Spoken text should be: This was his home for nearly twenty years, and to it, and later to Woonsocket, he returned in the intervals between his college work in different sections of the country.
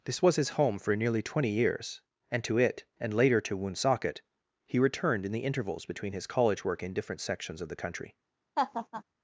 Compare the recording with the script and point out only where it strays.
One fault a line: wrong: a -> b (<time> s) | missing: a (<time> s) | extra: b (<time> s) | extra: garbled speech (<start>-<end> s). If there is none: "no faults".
no faults